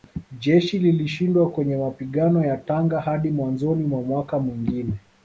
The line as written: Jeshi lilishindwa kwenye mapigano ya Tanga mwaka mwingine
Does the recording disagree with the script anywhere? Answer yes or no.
yes